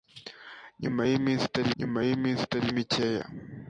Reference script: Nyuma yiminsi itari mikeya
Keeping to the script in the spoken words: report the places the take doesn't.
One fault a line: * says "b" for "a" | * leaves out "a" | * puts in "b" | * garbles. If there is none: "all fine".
* puts in "nyuma yiminsi itari"